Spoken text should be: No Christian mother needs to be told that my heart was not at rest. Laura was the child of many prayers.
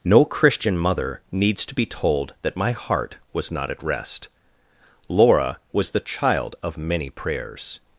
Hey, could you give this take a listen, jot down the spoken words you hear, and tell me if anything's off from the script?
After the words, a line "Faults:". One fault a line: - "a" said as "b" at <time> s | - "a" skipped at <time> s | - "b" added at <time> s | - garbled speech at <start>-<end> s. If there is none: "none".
No Christian mother needs to be told that my heart was not at rest. Laura was the child of many prayers.
Faults:
none